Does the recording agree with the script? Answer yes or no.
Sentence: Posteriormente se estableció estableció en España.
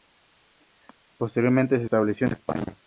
no